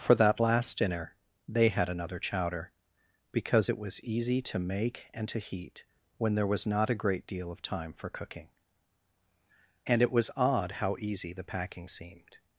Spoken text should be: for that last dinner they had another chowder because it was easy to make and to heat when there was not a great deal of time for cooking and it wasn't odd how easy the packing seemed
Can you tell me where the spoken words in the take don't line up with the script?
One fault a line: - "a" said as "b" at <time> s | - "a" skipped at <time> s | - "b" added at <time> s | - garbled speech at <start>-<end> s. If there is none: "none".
- "wasn't" said as "was" at 10.1 s